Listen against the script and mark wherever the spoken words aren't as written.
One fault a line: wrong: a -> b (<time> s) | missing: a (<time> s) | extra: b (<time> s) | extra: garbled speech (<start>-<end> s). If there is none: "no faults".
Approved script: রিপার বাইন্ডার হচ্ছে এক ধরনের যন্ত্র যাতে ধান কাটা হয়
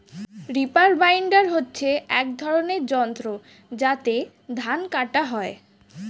no faults